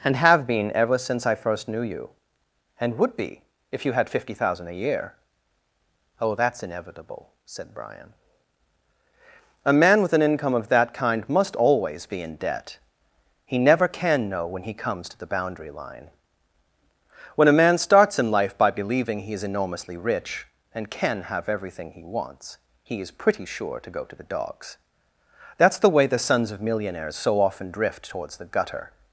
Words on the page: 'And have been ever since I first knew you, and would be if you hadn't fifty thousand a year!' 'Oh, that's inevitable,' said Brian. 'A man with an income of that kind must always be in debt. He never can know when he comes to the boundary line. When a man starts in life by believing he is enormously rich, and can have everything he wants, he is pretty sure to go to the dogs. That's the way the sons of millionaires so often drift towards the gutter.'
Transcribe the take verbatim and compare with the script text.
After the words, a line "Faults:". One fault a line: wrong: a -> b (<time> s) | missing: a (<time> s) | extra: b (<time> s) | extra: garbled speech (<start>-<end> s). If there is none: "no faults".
'And have been ever since I first knew you, and would be if you had fifty thousand a year!' 'Oh, that's inevitable,' said Brian. 'A man with an income of that kind must always be in debt. He never can know when he comes to the boundary line. When a man starts in life by believing he is enormously rich, and can have everything he wants, he is pretty sure to go to the dogs. That's the way the sons of millionaires so often drift towards the gutter.'
Faults:
wrong: hadn't -> had (3.9 s)